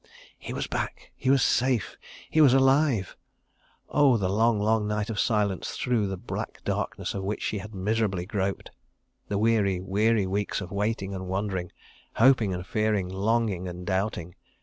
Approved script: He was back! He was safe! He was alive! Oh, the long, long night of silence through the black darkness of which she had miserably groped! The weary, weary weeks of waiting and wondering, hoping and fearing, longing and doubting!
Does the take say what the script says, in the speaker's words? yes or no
yes